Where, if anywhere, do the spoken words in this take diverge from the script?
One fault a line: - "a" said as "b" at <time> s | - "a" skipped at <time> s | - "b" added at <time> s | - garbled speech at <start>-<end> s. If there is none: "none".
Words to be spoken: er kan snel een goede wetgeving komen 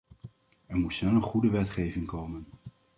- "kan" said as "moet" at 0.8 s